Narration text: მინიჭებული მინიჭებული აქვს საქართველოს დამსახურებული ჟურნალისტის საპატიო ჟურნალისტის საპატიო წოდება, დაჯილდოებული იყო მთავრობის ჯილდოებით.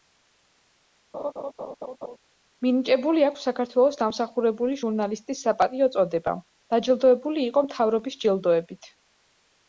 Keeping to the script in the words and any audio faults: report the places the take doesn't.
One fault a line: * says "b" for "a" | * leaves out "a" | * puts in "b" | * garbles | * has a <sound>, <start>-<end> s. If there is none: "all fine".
* has a laugh, 1.1-2.2 s
* leaves out "მინიჭებული"
* leaves out "ჟურნალისტის საპატიო"